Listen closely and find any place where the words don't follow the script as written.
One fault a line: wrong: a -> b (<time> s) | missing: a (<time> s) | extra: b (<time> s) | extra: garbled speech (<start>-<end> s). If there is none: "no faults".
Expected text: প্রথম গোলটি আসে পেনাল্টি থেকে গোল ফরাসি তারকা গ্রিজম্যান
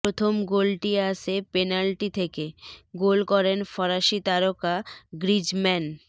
extra: করেন (3.3 s)